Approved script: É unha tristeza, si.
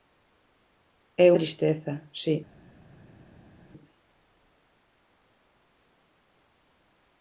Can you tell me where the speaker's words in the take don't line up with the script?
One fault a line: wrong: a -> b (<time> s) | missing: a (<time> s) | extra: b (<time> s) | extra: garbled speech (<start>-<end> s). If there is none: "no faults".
missing: unha (1.3 s)